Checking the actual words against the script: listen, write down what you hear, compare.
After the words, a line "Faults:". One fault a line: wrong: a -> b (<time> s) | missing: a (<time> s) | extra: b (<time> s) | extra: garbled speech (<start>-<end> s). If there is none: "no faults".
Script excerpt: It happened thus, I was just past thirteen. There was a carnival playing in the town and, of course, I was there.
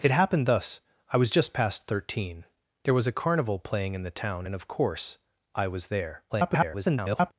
It happened thus, I was just past thirteen. There was a carnival playing in the town and, of course, I was there. [garbled]
Faults:
extra: garbled speech (6.3-7.3 s)